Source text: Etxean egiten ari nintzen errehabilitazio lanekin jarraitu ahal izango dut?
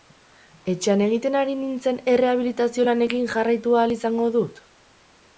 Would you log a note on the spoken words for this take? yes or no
no